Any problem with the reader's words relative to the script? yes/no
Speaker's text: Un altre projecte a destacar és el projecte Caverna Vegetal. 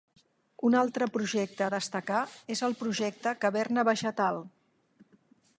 no